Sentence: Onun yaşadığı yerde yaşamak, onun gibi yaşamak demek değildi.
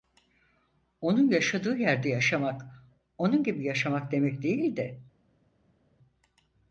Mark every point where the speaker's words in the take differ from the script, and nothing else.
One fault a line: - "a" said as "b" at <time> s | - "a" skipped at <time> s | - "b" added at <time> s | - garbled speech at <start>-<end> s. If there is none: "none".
none